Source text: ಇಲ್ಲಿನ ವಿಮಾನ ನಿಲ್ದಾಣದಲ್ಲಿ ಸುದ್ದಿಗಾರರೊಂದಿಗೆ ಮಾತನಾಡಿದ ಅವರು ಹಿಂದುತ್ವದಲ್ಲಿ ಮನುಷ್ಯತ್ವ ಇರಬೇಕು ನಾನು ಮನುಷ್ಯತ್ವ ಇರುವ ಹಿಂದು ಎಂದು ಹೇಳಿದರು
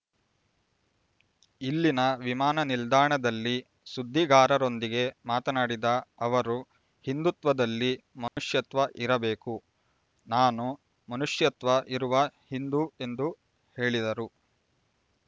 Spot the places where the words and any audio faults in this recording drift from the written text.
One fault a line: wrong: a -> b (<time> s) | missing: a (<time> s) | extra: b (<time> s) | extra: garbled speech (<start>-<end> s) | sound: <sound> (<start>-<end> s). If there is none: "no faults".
sound: dropout (8.3-8.4 s)